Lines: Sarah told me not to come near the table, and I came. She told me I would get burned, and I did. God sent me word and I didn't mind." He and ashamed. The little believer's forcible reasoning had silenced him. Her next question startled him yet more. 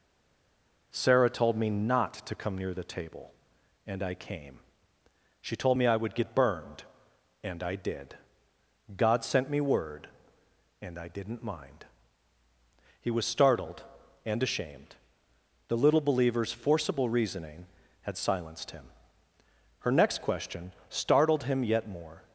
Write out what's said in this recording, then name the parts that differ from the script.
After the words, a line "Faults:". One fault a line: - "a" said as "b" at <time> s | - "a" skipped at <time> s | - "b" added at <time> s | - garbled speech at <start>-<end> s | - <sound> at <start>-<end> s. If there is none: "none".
Sarah told me not to come near the table, and I came. She told me I would get burned, and I did. God sent me word and I didn't mind." He was startled and ashamed. The little believer's forcible reasoning had silenced him. Her next question startled him yet more.
Faults:
- "was startled" added at 13.1 s